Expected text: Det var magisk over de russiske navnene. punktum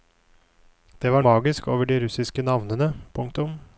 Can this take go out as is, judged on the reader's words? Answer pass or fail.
pass